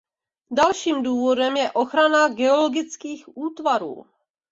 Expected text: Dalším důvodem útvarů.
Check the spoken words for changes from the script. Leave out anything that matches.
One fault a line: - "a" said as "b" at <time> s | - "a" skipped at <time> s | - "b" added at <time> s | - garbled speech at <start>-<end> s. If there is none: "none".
- "je ochrana geologických" added at 1.6 s